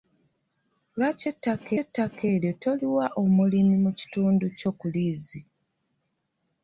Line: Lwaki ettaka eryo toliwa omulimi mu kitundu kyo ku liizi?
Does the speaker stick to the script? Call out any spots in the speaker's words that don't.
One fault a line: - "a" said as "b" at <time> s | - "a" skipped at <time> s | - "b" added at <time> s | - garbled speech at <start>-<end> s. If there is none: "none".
- "ettaka" added at 1.8 s